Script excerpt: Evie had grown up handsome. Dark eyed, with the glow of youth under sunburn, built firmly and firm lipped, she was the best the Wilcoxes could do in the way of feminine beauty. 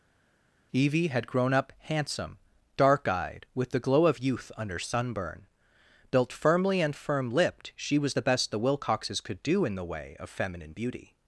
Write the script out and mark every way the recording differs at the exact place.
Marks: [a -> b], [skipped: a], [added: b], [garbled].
Evie had grown up handsome. Dark eyed, with the glow of youth under sunburn, built firmly and firm lipped, she was the best the Wilcoxes could do in the way of feminine beauty.